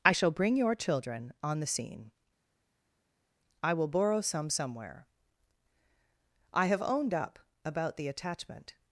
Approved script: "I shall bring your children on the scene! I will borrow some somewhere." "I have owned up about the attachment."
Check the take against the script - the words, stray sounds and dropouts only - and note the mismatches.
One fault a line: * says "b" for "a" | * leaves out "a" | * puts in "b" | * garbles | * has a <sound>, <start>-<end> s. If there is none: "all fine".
all fine